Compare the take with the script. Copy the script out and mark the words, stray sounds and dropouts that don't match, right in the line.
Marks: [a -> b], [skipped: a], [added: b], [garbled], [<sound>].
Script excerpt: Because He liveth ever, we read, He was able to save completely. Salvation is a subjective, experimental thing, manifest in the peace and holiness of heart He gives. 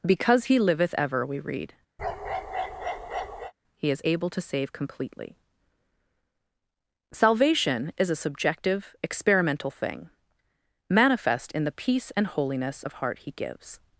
Because He liveth ever, we read, [bark] He [was -> is] able to save completely. Salvation is a subjective, experimental thing, manifest in the peace and holiness of heart He gives.